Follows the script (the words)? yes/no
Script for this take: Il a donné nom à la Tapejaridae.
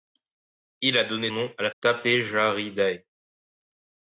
yes